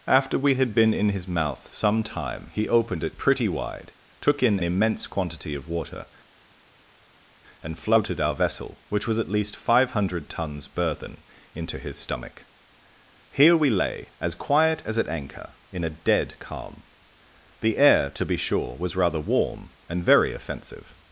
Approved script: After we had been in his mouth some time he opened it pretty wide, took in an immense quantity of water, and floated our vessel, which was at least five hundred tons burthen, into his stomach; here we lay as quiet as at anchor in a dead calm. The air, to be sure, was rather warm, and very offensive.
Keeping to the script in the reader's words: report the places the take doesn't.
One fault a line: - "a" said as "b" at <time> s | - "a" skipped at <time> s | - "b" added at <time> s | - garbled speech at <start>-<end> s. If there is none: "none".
- "an" skipped at 4.6 s